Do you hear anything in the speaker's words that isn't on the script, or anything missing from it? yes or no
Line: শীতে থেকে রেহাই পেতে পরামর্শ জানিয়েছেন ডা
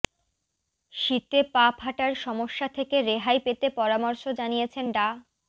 yes